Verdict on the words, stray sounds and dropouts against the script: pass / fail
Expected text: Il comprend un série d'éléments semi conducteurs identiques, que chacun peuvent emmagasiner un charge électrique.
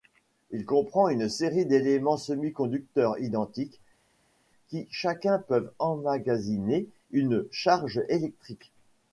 fail